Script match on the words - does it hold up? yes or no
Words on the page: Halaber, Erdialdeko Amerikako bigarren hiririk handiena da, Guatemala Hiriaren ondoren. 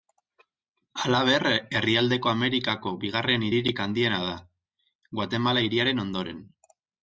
yes